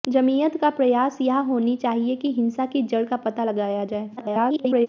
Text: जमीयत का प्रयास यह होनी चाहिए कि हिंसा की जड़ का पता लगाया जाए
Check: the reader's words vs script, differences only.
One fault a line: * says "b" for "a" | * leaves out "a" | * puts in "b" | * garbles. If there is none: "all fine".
* garbles